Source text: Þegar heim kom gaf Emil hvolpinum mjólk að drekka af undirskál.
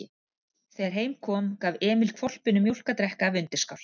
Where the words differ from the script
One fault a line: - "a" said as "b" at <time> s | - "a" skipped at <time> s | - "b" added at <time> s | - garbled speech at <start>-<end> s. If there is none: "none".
none